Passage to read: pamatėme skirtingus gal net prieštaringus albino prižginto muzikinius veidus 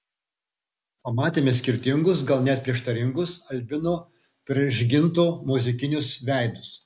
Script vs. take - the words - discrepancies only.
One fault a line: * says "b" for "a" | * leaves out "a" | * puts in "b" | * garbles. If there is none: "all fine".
all fine